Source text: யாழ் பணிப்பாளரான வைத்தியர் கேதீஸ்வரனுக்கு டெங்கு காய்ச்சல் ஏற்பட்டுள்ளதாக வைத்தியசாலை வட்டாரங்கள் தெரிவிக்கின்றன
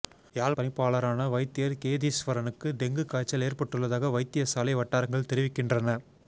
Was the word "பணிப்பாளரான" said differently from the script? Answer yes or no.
no